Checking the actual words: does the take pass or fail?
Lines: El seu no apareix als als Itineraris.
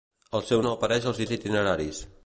pass